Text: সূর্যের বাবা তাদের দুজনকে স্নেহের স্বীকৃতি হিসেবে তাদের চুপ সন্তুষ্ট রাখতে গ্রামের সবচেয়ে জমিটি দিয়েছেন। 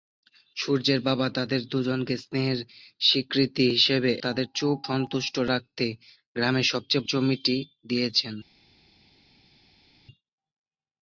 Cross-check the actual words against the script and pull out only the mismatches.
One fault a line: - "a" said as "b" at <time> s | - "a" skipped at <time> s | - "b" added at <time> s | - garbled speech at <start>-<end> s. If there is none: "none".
none